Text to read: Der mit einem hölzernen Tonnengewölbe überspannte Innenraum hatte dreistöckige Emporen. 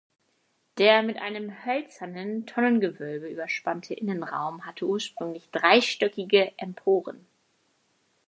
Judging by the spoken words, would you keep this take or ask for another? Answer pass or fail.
fail